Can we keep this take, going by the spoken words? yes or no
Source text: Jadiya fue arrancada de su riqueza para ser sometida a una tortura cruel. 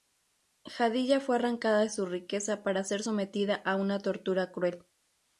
yes